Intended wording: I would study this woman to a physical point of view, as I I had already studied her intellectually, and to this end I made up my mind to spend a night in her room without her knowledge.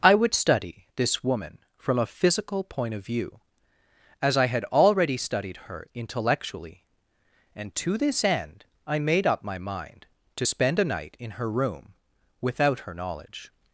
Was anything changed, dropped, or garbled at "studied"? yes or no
no